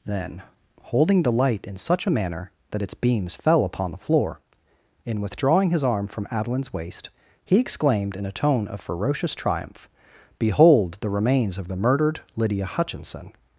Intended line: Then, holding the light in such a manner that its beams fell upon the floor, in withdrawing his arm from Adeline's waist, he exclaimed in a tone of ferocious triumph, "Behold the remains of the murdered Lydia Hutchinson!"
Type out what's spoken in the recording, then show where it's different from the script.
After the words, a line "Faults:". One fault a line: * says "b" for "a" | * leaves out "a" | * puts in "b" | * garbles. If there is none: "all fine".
Then, holding the light in such a manner that its beams fell upon the floor, in withdrawing his arm from Adeline's waist, he exclaimed in a tone of ferocious triumph, "Behold the remains of the murdered Lydia Hutchinson!"
Faults:
all fine